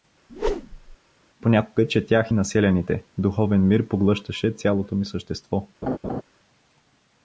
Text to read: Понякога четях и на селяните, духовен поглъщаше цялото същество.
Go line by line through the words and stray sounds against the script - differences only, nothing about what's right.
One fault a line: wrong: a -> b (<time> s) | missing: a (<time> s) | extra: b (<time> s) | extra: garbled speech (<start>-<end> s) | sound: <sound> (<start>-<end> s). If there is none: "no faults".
sound: whoosh (0.3-1.0 s)
extra: мир (3.7 s)
extra: ми (5.0 s)
sound: laugh (5.8-6.2 s)